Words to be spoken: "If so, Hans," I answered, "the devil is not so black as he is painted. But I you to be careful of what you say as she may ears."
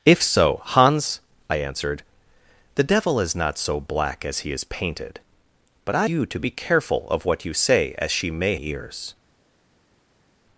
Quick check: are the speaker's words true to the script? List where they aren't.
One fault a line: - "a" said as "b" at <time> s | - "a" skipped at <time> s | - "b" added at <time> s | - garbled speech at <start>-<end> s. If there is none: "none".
none